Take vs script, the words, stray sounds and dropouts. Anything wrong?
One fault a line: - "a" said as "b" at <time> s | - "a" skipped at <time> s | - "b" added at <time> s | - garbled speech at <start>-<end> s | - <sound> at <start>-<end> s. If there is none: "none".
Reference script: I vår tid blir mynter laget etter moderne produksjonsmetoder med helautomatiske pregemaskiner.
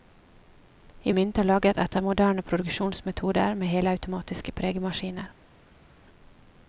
- "vår tid blir" skipped at 1.1 s